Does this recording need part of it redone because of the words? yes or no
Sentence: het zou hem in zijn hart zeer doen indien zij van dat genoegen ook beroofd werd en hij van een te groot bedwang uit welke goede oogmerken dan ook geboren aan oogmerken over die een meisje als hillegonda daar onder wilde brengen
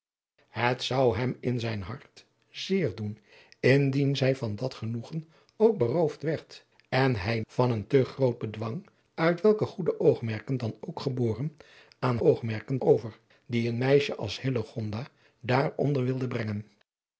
no